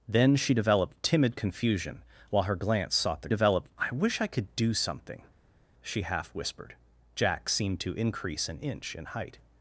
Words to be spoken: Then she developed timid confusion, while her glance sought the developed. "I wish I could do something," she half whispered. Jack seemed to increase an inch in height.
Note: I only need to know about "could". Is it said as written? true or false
true